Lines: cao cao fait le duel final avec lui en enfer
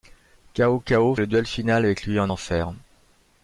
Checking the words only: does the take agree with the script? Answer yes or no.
no